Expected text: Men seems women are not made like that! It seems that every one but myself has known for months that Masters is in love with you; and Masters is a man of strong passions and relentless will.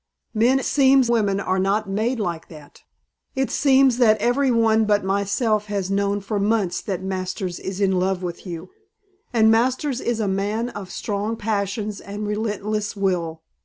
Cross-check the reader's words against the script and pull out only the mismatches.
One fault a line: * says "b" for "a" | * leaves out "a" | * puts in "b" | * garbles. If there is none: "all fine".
all fine